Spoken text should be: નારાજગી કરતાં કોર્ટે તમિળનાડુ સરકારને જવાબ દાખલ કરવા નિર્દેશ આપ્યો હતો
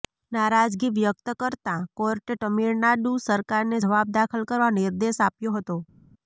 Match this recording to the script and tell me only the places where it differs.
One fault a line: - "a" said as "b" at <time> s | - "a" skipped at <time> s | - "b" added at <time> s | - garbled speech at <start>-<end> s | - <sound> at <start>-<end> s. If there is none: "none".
- "વ્યક્ત" added at 0.9 s